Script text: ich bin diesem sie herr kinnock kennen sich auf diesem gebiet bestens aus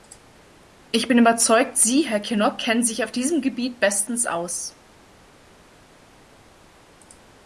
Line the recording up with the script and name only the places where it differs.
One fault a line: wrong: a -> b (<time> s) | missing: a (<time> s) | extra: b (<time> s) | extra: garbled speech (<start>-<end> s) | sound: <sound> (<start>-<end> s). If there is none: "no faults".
wrong: diesem -> überzeugt (1.2 s)